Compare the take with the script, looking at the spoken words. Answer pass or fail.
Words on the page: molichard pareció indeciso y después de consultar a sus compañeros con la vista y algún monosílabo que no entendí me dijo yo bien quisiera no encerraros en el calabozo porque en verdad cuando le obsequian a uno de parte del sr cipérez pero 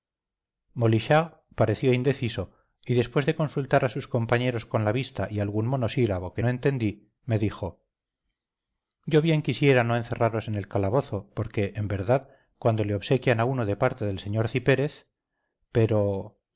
pass